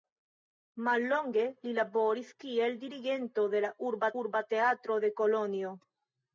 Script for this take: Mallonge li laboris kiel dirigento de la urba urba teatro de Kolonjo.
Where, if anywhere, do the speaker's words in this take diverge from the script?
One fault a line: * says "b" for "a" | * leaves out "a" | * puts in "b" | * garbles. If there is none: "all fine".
all fine